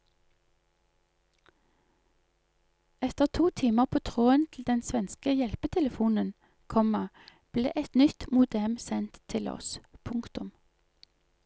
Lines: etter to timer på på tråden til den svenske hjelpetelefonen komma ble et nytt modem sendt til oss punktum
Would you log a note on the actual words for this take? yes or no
yes